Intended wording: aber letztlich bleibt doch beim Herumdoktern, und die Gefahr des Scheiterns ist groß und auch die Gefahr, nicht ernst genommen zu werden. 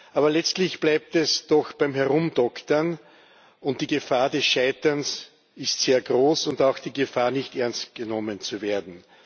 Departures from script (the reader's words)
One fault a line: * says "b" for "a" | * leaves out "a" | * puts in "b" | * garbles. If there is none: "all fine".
* puts in "es"
* puts in "sehr"